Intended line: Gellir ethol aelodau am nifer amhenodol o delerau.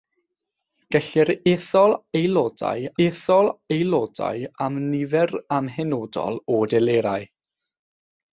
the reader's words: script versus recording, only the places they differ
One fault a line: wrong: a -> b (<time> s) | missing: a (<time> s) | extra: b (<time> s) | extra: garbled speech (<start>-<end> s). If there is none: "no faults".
extra: ethol aelodau (3.1 s)